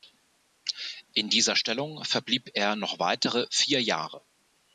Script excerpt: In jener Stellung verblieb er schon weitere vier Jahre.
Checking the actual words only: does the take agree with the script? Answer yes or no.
no